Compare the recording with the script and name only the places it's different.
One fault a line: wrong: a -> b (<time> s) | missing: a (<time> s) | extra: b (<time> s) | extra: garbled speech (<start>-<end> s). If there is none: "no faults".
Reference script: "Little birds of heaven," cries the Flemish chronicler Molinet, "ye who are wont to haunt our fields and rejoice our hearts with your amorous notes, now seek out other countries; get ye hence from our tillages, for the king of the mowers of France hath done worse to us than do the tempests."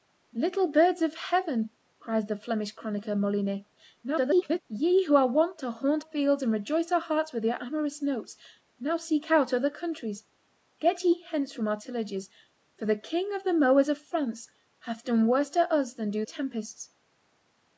extra: garbled speech (4.0-4.6 s)
missing: our (6.0 s)
missing: the (16.3 s)